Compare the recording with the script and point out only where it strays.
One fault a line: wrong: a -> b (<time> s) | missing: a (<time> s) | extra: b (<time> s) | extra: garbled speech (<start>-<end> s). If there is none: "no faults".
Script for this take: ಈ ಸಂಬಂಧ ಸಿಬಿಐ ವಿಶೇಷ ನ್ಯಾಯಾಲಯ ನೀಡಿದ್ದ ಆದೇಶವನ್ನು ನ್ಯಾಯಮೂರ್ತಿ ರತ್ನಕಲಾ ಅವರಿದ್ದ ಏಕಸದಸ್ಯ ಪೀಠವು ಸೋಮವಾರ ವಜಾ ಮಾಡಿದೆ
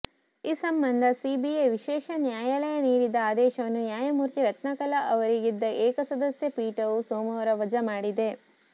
no faults